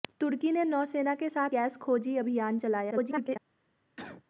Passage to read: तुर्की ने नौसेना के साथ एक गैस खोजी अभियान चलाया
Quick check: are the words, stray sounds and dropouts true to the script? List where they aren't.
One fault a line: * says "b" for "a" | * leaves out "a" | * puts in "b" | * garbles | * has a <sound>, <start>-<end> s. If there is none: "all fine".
* leaves out "एक"
* garbles
* has a cough, 4.0-4.2 s